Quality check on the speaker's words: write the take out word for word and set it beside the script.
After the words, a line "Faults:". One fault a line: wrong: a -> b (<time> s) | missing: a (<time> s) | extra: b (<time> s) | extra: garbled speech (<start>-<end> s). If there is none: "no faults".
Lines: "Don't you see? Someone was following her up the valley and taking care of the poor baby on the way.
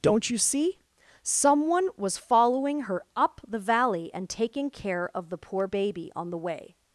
"Don't you see? Someone was following her up the valley and taking care of the poor baby on the way.
Faults:
no faults